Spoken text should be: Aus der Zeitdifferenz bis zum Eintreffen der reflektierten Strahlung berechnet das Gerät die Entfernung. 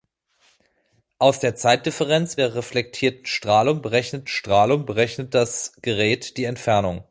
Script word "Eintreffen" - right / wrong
wrong